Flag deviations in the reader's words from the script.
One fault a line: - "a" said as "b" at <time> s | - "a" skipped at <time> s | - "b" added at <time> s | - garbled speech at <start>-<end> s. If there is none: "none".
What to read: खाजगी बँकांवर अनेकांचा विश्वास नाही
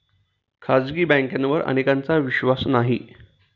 none